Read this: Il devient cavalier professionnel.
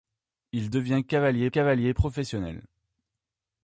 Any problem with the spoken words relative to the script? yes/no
yes